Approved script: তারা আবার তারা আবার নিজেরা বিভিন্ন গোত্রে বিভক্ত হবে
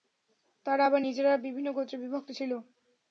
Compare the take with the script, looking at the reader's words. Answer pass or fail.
fail